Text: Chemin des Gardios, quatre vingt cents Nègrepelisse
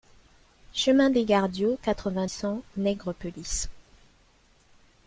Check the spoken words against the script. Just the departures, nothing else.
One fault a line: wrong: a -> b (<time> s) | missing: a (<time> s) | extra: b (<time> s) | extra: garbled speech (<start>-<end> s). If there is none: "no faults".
no faults